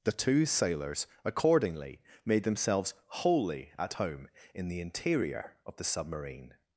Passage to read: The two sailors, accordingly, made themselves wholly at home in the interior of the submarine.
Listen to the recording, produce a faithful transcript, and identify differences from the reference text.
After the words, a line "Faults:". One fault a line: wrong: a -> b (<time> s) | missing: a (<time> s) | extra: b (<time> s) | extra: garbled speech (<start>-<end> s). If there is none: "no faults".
The two sailors, accordingly, made themselves wholly at home in the interior of the submarine.
Faults:
no faults